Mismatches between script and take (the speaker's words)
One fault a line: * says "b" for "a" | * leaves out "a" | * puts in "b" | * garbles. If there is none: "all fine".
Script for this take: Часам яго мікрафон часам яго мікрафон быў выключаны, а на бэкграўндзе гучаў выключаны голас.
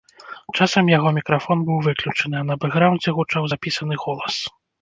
* leaves out "часам яго мікрафон"
* says "запісаны" for "выключаны"